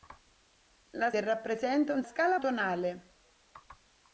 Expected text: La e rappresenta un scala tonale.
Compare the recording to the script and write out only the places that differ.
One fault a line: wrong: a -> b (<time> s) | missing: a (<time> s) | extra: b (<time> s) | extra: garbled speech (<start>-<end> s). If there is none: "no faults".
no faults